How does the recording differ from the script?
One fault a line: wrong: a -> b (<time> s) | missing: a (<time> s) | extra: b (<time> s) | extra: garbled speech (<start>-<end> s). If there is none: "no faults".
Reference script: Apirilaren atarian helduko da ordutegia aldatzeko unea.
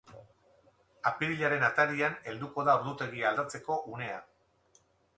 no faults